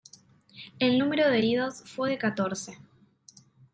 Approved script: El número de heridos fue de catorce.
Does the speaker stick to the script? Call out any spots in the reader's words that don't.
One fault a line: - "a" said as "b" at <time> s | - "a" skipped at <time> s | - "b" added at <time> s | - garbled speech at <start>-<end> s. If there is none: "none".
none